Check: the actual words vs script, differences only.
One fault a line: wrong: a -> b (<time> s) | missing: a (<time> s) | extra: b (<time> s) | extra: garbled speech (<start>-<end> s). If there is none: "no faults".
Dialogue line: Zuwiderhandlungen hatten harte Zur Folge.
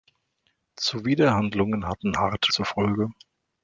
no faults